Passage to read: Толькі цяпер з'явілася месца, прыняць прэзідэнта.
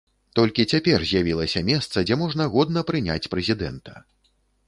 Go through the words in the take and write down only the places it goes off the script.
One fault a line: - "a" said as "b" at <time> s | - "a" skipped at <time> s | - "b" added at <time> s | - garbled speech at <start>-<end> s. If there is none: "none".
- "дзе можна годна" added at 2.1 s